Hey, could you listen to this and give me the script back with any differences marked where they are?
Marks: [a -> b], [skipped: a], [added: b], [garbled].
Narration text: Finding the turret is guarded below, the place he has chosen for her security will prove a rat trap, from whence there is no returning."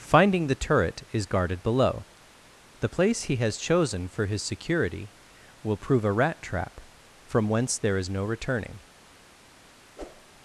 Finding the turret is guarded below, the place he has chosen for [her -> his] security will prove a rat trap, from whence there is no returning."